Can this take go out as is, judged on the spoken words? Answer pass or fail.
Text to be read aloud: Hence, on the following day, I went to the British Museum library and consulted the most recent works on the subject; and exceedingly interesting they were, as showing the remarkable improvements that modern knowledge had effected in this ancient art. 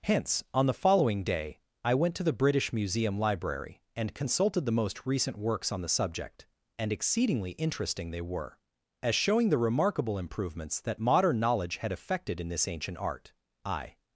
fail